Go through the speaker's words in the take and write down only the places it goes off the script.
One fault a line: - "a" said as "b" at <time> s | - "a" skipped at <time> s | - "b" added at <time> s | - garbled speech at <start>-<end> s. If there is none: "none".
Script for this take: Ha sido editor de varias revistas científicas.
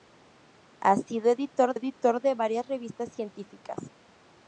- "editor" added at 1.7 s